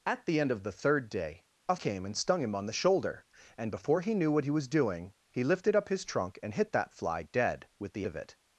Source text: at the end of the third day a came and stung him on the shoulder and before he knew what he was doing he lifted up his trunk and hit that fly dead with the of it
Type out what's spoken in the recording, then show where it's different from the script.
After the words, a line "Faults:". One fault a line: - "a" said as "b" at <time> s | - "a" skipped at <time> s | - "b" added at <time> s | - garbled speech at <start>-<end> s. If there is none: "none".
at the end of the third day a came and stung him on the shoulder and before he knew what he was doing he lifted up his trunk and hit that fly dead with the of it
Faults:
none